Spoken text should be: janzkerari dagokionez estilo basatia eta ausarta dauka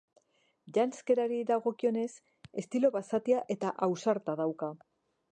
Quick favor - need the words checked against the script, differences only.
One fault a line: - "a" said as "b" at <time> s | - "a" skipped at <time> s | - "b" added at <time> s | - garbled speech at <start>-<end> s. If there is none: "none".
none